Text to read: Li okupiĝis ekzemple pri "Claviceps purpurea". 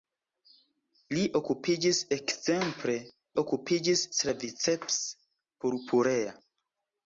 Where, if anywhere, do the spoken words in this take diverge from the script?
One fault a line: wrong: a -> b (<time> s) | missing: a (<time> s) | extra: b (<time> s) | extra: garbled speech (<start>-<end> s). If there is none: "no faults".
wrong: pri -> okupiĝis (3.4 s)